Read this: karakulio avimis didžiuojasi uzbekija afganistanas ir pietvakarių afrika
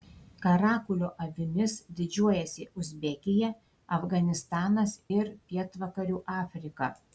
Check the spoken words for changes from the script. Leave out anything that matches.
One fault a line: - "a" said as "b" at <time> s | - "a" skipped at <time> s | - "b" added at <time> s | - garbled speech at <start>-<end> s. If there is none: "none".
none